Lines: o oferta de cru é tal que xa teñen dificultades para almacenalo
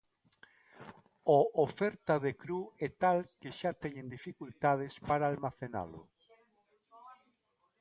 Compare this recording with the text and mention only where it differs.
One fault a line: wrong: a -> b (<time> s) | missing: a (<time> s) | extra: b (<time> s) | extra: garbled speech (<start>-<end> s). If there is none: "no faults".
no faults